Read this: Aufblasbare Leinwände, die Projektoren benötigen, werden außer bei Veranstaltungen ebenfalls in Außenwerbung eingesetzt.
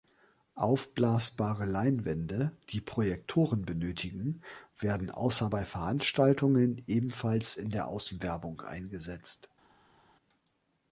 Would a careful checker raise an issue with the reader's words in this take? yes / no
yes